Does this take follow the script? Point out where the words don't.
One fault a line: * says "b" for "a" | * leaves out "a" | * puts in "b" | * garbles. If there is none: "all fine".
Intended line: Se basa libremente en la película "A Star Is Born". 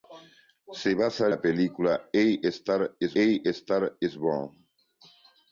* says "la película A Star Is" for "libremente en la película"